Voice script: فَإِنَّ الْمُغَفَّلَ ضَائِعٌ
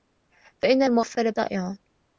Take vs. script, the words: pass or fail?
pass